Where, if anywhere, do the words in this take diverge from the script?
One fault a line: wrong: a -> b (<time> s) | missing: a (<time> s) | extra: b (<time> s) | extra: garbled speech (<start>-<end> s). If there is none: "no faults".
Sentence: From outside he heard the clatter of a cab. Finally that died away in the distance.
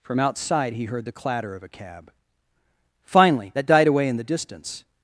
no faults